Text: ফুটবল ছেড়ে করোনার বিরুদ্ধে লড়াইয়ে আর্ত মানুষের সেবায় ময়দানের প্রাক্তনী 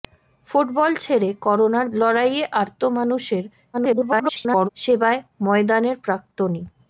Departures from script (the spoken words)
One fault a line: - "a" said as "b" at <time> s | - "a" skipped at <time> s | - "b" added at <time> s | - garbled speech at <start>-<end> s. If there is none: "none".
- "বিরুদ্ধে" skipped at 1.9 s
- garbled speech at 3.7-4.7 s